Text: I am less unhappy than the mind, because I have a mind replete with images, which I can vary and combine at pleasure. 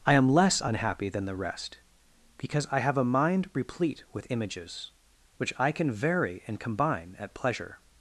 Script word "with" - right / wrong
right